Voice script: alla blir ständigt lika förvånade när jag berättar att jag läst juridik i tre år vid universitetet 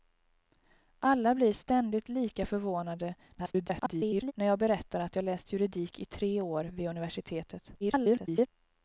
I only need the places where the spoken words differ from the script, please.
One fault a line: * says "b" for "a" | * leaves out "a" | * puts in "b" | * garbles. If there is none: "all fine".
* garbles
* garbles